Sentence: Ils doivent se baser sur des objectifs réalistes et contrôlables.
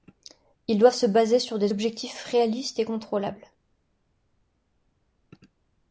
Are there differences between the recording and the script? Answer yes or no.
no